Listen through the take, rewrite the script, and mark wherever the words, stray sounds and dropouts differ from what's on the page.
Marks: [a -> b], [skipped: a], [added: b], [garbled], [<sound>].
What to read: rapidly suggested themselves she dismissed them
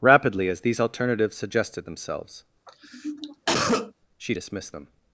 rapidly [added: as these alternatives] suggested themselves [cough] she dismissed them